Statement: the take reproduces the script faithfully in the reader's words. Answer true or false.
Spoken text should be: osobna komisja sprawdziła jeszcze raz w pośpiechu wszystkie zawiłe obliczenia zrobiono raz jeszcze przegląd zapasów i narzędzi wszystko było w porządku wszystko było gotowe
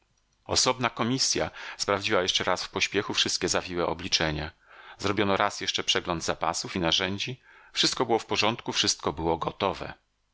true